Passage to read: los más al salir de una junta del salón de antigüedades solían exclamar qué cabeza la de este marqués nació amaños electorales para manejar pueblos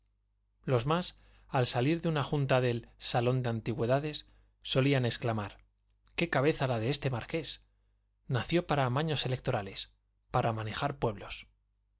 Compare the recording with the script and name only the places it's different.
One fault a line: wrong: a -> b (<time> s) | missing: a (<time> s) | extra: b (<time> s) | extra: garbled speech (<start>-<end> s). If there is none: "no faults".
extra: para (8.7 s)